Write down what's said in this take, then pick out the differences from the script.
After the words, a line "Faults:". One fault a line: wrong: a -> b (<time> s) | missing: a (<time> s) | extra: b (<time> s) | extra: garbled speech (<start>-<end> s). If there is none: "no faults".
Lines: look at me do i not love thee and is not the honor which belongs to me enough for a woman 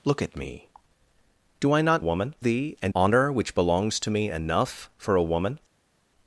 look at me do i not woman thee and honor which belongs to me enough for a woman
Faults:
wrong: love -> woman (2.0 s)
missing: is not the (2.9 s)